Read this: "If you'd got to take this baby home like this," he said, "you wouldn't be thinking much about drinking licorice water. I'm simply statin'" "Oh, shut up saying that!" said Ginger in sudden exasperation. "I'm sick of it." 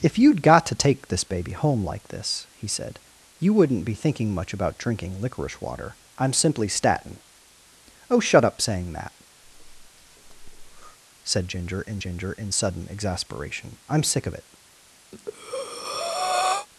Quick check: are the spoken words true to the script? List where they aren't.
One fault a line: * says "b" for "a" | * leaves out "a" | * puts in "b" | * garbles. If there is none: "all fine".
* puts in "Ginger in"